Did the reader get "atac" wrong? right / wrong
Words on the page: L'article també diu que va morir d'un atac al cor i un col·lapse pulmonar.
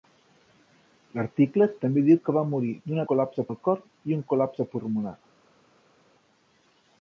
wrong